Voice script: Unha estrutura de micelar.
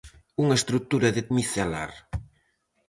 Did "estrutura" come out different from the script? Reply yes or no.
no